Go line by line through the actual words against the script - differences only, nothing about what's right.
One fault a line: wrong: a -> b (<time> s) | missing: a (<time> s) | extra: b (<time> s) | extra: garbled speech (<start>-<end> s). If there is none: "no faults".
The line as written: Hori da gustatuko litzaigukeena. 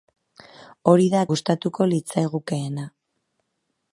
no faults